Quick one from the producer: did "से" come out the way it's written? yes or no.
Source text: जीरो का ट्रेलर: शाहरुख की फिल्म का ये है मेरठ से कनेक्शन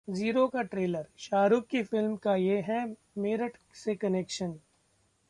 yes